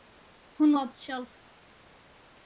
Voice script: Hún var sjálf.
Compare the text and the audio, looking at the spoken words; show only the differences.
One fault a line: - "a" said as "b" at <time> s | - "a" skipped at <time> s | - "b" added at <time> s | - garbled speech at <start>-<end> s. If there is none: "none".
none